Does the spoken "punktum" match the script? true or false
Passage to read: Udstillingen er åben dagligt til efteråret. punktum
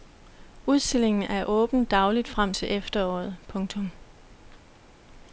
true